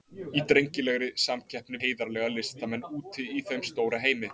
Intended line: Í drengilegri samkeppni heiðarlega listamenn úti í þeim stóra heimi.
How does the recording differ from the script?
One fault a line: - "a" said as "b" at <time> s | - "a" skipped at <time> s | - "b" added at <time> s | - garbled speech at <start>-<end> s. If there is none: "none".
none